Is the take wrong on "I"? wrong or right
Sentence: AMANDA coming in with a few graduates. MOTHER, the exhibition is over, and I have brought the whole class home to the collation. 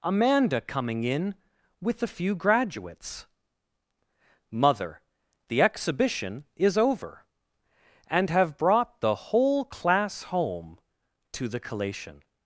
wrong